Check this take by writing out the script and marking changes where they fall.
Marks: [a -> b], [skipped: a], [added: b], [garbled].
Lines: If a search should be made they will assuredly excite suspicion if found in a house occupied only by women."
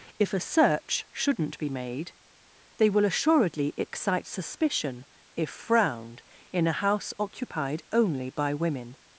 If a search [should -> shouldn't] be made they will assuredly excite suspicion if [found -> frowned] in a house occupied only by women."